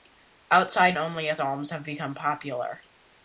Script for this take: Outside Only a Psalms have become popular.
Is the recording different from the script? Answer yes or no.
no